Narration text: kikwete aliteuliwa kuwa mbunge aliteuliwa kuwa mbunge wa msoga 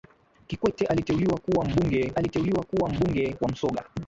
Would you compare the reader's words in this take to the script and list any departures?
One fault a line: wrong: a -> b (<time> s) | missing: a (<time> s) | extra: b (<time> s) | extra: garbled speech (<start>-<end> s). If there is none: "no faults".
no faults